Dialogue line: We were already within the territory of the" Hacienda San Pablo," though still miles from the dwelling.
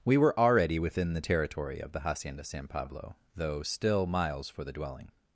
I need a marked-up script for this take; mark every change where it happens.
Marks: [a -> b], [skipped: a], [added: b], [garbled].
We were already within the territory of the" Hacienda San Pablo," though still miles [from -> for] the dwelling.